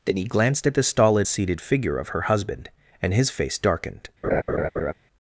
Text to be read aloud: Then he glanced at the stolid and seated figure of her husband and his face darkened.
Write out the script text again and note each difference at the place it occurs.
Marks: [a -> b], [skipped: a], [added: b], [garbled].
Then he glanced at the stolid [skipped: and] seated figure of her husband and his face darkened.